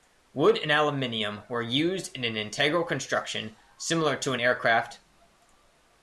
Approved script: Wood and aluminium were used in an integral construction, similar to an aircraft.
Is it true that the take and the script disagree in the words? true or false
false